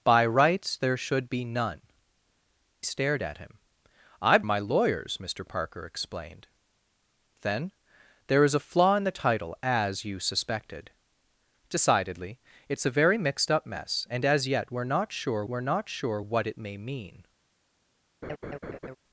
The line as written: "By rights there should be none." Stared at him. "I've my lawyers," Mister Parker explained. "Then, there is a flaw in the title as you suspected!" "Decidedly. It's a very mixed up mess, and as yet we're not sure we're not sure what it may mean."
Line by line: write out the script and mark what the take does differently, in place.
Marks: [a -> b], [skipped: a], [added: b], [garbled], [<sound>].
"By rights there should be none." Stared at him. "I've my lawyers," Mister Parker explained. "Then, there is a flaw in the title as you suspected!" "Decidedly. It's a very mixed up mess, and as yet we're not sure we're not sure what it may mean." [laugh]